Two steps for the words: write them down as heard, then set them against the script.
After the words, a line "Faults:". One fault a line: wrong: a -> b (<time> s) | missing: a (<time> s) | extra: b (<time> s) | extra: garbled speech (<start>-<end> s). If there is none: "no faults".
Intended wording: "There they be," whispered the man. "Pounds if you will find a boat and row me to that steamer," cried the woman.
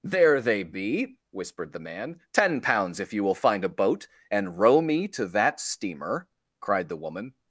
"There they be," whispered the man. "Ten pounds if you will find a boat and row me to that steamer," cried the woman.
Faults:
extra: Ten (2.3 s)